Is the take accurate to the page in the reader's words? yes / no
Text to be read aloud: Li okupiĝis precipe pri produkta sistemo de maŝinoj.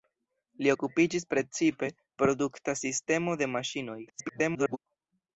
no